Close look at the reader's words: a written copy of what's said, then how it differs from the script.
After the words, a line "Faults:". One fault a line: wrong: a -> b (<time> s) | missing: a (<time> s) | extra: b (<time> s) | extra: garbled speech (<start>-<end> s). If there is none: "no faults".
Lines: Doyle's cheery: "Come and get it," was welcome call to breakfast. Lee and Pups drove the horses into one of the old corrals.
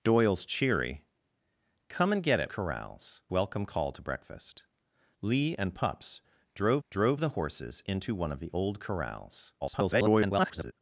Doyle's cheery: "Come and get it," corrals welcome call to breakfast. Lee and Pups drove drove the horses into one of the old corrals. [garbled]
Faults:
wrong: was -> corrals (2.5 s)
extra: drove (6.9 s)
extra: garbled speech (9.6-10.7 s)